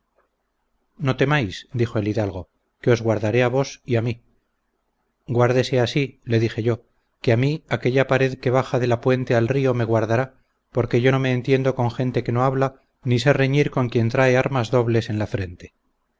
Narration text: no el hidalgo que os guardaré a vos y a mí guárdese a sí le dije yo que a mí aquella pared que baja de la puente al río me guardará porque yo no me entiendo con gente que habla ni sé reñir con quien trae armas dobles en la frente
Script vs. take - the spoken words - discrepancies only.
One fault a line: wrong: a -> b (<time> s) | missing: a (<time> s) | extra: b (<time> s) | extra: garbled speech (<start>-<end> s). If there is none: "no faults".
extra: temáis dijo (1.1 s)
extra: no (12.3 s)